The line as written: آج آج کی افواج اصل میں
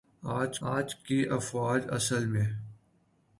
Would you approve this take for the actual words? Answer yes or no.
yes